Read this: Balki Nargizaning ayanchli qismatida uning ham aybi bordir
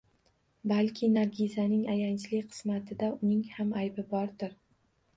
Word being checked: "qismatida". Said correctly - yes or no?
yes